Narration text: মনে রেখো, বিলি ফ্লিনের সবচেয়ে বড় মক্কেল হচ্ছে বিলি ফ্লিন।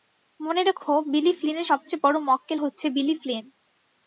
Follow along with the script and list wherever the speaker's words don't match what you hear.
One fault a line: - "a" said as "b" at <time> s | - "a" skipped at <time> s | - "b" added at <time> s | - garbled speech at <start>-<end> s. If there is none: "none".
none